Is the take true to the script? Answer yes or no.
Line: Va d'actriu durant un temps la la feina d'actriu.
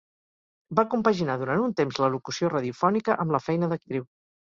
no